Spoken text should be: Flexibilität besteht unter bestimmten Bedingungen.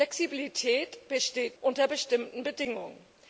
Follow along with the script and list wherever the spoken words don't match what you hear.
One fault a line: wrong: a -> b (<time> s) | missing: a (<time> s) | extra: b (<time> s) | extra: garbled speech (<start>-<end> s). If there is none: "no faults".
no faults